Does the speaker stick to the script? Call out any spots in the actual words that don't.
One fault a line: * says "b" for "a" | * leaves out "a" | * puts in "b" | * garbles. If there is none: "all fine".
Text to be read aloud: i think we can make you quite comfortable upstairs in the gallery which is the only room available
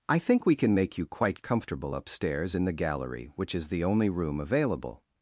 all fine